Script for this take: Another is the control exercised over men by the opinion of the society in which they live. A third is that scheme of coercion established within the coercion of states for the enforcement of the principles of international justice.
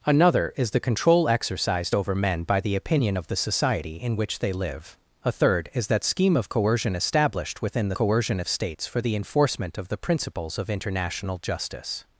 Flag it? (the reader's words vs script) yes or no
no